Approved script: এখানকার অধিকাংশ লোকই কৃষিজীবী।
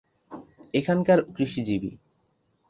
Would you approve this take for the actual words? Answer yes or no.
no